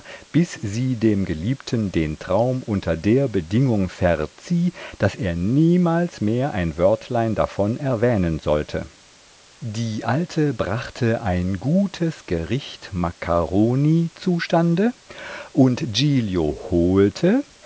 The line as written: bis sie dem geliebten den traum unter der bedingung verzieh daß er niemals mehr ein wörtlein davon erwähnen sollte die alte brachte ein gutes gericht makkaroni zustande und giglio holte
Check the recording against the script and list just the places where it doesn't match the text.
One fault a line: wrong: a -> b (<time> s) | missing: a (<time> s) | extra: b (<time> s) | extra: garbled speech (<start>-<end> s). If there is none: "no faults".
no faults